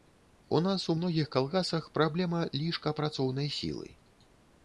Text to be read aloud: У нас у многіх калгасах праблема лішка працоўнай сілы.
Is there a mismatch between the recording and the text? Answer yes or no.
no